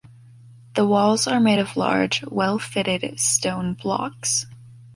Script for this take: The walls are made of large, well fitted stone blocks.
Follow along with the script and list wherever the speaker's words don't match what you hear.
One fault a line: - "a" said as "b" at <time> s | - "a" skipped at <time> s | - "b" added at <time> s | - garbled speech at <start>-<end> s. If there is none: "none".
none